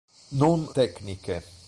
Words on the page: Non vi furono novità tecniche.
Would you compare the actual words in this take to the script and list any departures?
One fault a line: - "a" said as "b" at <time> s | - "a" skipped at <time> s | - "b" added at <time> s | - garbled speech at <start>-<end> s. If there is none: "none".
- "vi furono novità" skipped at 0.7 s